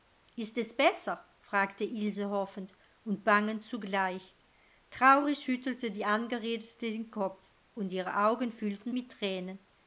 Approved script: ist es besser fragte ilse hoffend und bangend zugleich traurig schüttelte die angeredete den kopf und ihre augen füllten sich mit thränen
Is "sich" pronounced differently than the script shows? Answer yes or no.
yes